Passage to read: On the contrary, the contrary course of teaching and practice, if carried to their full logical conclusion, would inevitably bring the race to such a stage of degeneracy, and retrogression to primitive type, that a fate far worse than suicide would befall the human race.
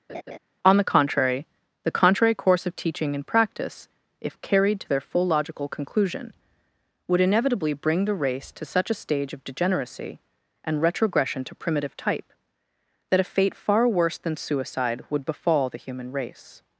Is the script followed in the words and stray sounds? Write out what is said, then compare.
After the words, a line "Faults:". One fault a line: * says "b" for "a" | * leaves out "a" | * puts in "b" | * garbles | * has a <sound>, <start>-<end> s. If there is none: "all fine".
On the contrary, the contrary course of teaching and practice, if carried to their full logical conclusion, would inevitably bring the race to such a stage of degeneracy, and retrogression to primitive type, that a fate far worse than suicide would befall the human race.
Faults:
* has a laugh, 0.1-0.4 s